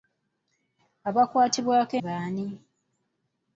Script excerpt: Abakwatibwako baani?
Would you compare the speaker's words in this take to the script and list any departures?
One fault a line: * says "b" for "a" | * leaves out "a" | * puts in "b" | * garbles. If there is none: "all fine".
all fine